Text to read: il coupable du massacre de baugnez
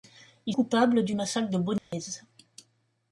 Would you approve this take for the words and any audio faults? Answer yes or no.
no